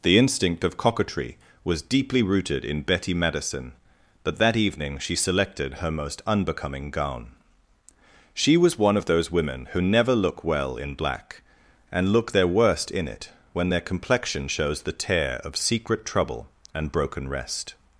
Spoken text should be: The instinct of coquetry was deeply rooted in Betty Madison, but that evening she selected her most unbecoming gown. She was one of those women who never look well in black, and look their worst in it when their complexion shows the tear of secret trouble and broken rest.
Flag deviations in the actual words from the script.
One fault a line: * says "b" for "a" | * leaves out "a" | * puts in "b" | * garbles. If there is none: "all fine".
all fine